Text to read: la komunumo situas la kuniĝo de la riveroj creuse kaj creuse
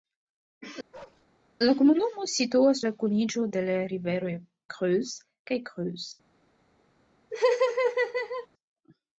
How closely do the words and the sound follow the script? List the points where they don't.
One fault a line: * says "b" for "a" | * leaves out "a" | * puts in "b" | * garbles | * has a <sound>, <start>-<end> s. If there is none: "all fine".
* has a bark, 0.9-1.3 s
* has a laugh, 7.3-8.5 s